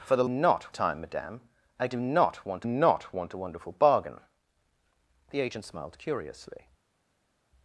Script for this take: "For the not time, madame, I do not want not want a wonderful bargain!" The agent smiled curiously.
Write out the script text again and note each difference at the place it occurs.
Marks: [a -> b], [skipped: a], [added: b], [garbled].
"For the not time, madame, I do not want not want a wonderful bargain!" The agent smiled curiously.